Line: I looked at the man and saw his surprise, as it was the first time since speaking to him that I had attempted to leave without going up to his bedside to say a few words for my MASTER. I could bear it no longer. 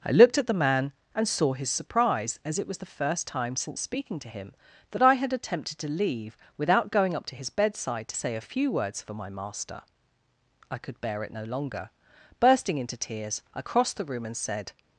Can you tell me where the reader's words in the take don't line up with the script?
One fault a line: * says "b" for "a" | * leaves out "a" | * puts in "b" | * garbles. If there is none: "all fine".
* puts in "Bursting into tears I crossed the room and said"